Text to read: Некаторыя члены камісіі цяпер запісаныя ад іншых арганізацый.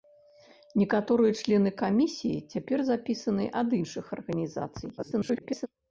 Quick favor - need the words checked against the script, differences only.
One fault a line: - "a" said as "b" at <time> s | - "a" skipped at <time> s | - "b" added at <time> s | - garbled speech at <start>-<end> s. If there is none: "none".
- garbled speech at 5.0-5.7 s